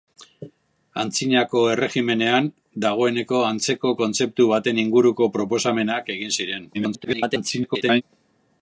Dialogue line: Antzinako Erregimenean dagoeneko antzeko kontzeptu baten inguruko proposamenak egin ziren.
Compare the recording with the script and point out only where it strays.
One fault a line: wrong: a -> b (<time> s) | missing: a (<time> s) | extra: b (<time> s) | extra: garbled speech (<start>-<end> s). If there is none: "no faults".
extra: garbled speech (6.7-8.0 s)